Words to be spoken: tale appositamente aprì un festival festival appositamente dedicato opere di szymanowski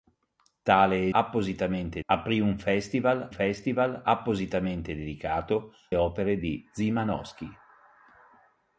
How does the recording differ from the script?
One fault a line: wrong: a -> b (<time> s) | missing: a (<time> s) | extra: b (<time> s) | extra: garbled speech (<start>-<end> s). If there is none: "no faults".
no faults